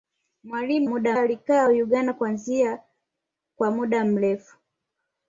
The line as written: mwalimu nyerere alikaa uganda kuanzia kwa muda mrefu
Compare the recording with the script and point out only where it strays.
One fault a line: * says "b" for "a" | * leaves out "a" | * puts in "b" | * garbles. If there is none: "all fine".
* says "muda" for "nyerere"